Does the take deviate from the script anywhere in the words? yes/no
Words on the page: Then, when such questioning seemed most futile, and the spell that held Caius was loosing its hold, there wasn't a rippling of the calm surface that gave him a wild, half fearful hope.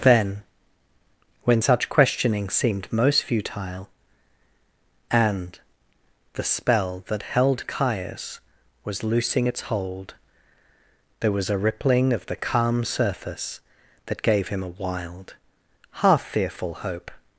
yes